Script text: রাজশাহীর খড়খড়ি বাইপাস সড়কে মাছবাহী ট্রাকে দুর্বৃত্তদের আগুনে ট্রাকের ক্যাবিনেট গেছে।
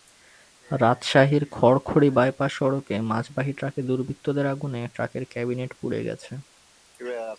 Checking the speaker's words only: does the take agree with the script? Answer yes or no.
no